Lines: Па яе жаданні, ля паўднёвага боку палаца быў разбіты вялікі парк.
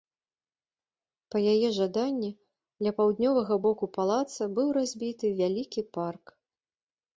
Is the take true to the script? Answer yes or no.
yes